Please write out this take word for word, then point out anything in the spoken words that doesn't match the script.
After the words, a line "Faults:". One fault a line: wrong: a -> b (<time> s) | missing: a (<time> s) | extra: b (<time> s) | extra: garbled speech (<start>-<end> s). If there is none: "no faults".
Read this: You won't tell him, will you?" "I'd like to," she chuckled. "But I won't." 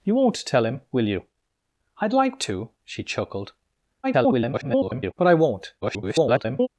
You won't tell him, will you?" "I'd like to," she chuckled. [garbled] "But I won't." [garbled]
Faults:
extra: garbled speech (4.0-5.1 s)
extra: garbled speech (5.8-6.7 s)